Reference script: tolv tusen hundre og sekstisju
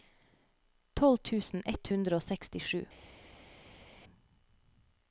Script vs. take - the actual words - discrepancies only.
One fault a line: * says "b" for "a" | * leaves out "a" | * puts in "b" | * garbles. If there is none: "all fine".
* puts in "ett"